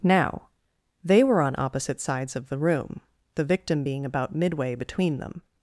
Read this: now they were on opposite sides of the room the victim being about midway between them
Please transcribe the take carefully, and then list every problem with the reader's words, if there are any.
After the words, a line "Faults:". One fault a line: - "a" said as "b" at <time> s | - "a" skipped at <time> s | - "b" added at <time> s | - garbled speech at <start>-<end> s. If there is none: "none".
now they were on opposite sides of the room the victim being about midway between them
Faults:
none